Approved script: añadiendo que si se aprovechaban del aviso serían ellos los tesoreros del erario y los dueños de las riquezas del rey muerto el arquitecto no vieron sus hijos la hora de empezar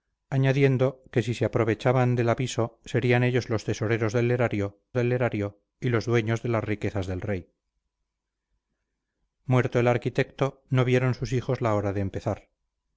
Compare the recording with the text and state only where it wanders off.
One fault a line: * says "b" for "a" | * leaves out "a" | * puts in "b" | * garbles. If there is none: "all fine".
* puts in "del erario"